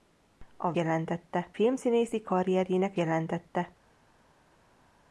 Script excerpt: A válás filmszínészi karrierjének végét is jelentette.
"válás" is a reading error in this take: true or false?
true